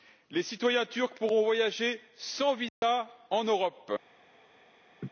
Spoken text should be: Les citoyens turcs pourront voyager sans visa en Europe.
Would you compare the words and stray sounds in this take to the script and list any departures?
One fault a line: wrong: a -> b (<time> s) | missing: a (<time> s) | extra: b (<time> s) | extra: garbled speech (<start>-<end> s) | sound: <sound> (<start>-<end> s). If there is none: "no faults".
sound: dropout (2.7-2.8 s)
sound: laugh (5.0-5.1 s)